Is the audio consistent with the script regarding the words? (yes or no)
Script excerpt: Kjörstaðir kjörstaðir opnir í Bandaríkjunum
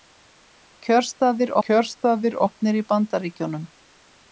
yes